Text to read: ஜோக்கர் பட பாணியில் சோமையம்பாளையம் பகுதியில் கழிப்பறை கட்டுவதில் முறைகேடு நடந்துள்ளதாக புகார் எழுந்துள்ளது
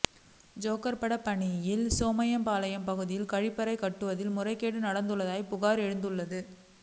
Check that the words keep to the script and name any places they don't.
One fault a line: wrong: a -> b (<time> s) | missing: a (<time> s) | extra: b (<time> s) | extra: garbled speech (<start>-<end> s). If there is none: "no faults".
no faults